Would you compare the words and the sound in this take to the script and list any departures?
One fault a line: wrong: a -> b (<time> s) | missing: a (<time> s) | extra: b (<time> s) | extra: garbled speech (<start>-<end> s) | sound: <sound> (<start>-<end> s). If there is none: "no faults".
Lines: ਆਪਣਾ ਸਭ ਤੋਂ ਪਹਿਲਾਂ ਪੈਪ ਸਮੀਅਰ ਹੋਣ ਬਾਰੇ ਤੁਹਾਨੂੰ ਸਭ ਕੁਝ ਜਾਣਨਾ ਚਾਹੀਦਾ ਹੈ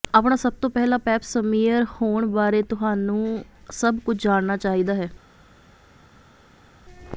no faults